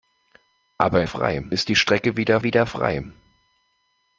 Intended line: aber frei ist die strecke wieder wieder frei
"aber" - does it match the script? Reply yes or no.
yes